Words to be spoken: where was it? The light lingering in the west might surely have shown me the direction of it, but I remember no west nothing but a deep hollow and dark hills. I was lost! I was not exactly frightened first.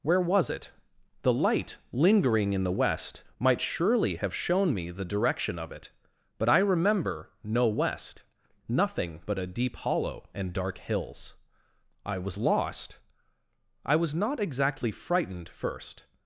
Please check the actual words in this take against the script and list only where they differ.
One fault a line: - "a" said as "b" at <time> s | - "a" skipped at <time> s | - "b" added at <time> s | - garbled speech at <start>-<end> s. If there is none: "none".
none